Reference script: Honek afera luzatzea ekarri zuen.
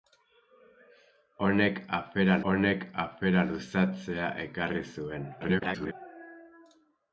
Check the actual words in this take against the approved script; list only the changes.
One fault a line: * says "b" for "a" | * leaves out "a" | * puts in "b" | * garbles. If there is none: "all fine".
* puts in "honek afera"
* garbles